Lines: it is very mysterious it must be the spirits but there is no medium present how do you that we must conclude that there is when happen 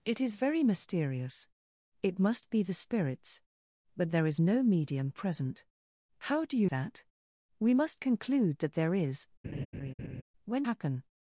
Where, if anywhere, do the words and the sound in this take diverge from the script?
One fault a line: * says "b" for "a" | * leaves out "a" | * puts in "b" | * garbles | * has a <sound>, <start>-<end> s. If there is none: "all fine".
* has a laugh, 9.4-10.2 s